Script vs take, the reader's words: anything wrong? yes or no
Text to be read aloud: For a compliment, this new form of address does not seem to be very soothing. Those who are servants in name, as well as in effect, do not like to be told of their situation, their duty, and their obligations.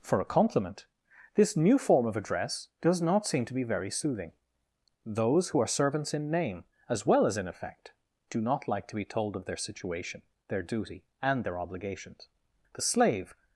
yes